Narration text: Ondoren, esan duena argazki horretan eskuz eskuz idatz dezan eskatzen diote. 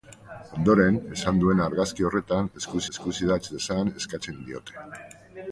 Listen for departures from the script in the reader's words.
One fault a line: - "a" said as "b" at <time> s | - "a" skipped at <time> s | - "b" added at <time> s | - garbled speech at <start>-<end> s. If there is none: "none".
none